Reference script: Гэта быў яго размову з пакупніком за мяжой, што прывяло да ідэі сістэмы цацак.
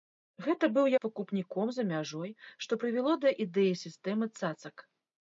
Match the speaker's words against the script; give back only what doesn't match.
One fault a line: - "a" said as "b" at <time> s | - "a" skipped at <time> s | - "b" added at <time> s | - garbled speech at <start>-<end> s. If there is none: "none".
- "яго размову" skipped at 0.9 s